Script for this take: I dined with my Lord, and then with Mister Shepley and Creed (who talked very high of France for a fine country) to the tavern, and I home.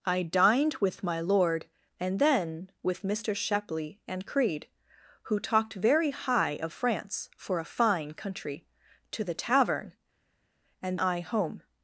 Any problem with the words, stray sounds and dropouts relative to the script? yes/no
no